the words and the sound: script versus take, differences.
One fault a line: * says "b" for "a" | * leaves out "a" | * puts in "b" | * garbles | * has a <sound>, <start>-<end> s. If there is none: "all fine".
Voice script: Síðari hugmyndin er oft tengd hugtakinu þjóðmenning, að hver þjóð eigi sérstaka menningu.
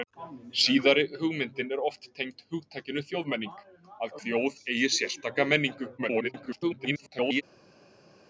* leaves out "hver"
* garbles